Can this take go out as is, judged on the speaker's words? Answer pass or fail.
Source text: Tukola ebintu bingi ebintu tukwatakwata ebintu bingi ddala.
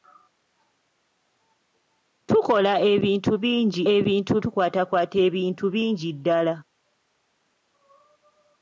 pass